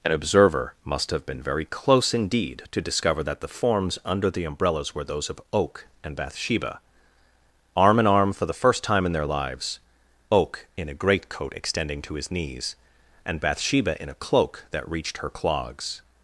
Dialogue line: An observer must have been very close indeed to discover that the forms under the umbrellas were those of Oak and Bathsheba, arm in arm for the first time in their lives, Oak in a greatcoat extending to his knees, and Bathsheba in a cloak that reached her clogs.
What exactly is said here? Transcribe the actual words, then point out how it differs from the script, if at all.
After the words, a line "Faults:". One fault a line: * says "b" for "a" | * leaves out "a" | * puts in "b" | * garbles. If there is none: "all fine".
An observer must have been very close indeed to discover that the forms under the umbrellas were those of Oak and Bathsheba, arm in arm for the first time in their lives, Oak in a greatcoat extending to his knees, and Bathsheba in a cloak that reached her clogs.
Faults:
all fine